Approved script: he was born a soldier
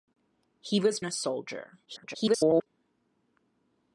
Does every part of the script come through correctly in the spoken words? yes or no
no